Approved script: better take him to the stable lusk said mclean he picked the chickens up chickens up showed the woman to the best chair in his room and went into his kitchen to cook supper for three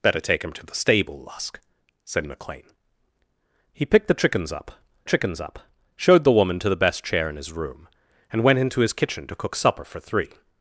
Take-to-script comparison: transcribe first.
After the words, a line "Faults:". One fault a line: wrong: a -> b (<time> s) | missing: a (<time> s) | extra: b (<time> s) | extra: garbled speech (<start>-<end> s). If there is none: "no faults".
better take him to the stable lusk said mclean he picked the chickens up chickens up showed the woman to the best chair in his room and went into his kitchen to cook supper for three
Faults:
no faults